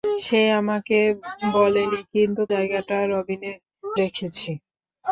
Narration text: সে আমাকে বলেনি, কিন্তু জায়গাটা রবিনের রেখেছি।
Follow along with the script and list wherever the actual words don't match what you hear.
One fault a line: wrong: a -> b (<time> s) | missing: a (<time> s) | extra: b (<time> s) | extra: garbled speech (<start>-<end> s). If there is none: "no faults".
no faults